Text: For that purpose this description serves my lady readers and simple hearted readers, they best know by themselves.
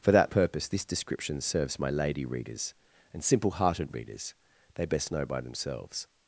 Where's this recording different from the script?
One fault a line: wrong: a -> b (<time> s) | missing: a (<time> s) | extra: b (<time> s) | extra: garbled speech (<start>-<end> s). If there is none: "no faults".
no faults